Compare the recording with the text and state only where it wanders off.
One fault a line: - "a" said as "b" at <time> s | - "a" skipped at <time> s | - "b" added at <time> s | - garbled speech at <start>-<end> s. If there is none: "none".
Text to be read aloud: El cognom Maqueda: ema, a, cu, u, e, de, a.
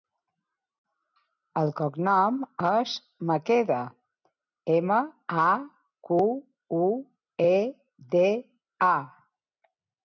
- "és" added at 2.7 s